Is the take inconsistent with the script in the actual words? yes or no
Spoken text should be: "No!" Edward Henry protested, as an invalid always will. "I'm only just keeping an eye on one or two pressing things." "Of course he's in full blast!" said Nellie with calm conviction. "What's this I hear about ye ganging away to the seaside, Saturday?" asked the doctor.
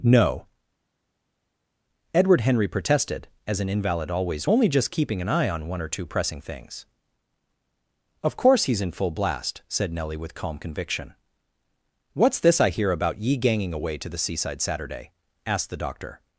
yes